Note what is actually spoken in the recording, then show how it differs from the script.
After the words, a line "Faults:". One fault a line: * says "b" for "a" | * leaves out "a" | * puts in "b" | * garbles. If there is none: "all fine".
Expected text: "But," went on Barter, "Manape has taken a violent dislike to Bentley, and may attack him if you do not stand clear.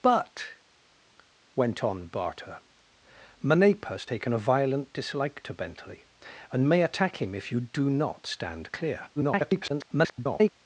"But," went on Barter, "Manape has taken a violent dislike to Bentley, and may attack him if you do not stand clear. [garbled]
Faults:
* garbles